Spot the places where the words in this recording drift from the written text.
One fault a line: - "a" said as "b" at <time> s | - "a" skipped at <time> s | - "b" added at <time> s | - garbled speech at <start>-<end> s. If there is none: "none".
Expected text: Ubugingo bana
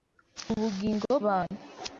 none